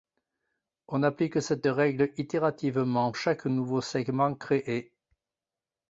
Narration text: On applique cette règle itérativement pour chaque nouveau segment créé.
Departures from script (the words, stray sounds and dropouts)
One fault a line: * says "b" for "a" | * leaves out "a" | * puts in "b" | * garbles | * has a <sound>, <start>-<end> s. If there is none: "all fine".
* leaves out "pour"